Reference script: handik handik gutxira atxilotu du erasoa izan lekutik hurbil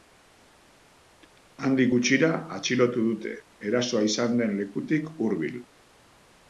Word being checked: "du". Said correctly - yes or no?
no